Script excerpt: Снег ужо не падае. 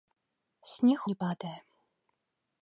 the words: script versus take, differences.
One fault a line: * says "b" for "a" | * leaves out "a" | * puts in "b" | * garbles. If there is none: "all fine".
* leaves out "ужо"